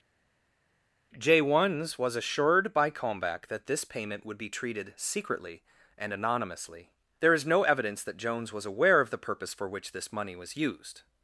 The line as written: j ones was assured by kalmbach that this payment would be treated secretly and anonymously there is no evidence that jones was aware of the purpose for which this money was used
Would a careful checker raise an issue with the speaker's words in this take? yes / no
no